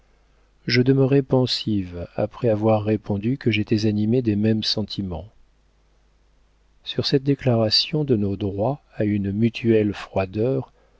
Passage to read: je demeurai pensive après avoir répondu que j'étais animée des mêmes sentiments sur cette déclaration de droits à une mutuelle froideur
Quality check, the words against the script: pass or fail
fail